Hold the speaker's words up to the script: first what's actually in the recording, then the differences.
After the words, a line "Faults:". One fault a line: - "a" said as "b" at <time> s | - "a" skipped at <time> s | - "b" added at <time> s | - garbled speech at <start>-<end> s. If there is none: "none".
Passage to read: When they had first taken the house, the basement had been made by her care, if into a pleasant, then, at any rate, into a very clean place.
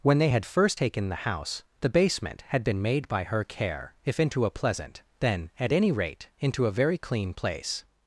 When they had first taken the house, the basement had been made by her care, if into a pleasant, then, at any rate, into a very clean place.
Faults:
none